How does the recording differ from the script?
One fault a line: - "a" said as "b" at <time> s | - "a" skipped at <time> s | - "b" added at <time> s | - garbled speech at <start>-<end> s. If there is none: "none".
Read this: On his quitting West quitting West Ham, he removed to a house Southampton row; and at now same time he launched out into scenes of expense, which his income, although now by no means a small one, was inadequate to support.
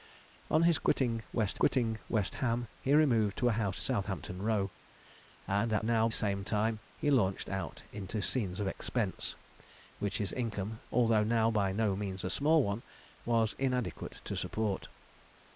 none